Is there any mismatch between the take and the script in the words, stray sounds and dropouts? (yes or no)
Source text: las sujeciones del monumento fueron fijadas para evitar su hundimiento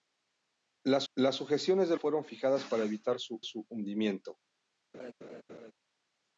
yes